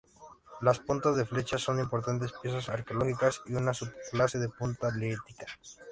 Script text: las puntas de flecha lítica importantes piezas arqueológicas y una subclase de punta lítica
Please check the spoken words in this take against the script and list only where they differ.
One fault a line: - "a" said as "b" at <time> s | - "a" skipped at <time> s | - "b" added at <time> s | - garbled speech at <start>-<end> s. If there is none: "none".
- "lítica" said as "son" at 1.6 s